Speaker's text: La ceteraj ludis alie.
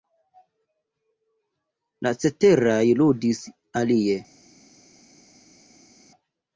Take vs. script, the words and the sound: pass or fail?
pass